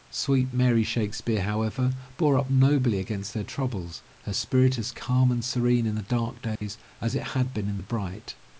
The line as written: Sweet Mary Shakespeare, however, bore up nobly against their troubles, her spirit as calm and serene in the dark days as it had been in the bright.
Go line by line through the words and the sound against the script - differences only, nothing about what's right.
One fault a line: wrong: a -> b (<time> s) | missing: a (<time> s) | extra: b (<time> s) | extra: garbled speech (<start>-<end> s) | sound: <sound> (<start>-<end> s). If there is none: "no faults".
sound: dropout (6.6-6.6 s)